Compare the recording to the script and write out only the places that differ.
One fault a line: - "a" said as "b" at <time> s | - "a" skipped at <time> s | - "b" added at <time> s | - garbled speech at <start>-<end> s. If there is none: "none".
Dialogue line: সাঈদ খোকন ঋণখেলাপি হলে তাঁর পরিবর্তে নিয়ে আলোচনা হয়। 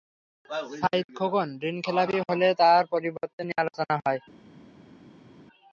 none